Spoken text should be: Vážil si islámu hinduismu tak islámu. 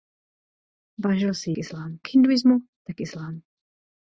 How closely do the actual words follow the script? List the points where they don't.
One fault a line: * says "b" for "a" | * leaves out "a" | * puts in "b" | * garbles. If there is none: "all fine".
all fine